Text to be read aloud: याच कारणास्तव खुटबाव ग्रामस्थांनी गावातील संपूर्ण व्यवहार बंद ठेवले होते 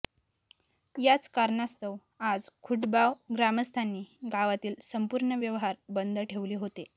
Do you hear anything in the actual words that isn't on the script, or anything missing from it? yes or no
yes